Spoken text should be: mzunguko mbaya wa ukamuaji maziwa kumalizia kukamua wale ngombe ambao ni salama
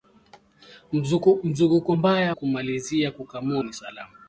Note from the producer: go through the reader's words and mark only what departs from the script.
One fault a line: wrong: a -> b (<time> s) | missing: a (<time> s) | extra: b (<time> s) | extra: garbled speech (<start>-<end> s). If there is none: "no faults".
missing: wa ukamuaji maziwa (2.3 s)
missing: wale ngombe ambao (3.6 s)